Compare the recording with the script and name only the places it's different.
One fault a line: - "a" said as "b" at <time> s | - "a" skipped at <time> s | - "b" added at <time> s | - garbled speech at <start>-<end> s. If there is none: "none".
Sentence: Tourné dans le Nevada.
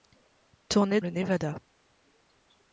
- "dans" skipped at 1.0 s